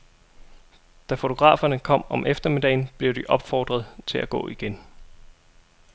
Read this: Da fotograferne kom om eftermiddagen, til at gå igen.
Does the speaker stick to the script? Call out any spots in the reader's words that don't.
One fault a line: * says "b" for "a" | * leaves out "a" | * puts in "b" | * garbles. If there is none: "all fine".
* puts in "blev de opfordret"